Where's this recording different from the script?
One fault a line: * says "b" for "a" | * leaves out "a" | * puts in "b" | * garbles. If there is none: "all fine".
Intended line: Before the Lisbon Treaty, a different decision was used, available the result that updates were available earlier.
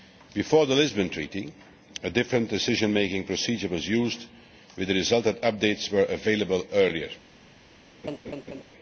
* puts in "making procedure"
* says "with" for "available"